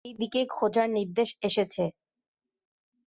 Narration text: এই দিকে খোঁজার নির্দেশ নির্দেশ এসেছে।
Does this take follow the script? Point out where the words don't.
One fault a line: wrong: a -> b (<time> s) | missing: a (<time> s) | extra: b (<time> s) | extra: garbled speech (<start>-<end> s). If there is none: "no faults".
missing: নির্দেশ (1.3 s)